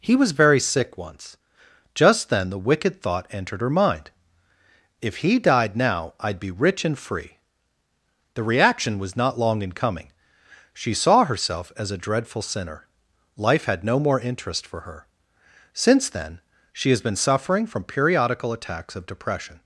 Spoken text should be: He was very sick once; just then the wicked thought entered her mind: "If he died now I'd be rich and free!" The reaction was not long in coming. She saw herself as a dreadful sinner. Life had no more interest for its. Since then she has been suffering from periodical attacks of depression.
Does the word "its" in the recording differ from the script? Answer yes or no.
yes